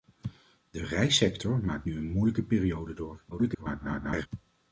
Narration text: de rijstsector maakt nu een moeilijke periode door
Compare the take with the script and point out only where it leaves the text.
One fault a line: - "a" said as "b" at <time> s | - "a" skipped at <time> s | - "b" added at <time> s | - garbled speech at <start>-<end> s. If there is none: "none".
- garbled speech at 3.3-4.3 s